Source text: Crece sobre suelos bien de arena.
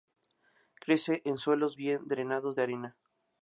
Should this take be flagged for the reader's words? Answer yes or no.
yes